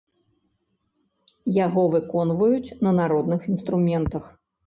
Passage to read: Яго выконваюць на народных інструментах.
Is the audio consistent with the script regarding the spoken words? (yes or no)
yes